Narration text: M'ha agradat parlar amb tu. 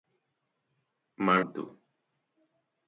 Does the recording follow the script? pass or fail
fail